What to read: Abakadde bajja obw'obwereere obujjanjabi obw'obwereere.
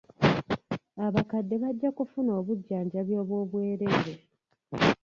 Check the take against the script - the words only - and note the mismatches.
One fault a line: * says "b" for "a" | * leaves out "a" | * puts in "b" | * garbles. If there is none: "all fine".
* says "kufuna" for "obw'obwereere"